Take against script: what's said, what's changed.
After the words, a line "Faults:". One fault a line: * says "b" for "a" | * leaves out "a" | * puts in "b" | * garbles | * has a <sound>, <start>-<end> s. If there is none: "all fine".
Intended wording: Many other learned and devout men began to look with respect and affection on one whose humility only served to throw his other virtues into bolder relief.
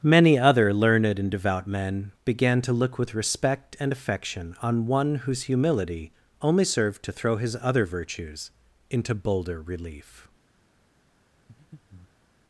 Many other learned and devout men began to look with respect and affection on one whose humility only served to throw his other virtues into bolder relief.
Faults:
* has a breath, 11.5-12.3 s